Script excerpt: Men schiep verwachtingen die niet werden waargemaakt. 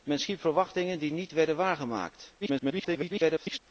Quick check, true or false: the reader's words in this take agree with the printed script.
false